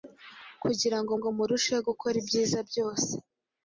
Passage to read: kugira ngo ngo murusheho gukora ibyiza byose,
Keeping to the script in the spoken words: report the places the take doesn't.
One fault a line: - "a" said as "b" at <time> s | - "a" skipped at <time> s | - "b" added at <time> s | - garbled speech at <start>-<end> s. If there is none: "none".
none